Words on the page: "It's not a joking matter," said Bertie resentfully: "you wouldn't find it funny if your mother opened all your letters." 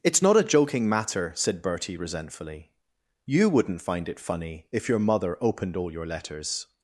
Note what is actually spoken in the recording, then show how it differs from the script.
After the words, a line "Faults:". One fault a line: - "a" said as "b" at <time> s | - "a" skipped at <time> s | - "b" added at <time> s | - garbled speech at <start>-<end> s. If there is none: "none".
"It's not a joking matter," said Bertie resentfully: "you wouldn't find it funny if your mother opened all your letters."
Faults:
none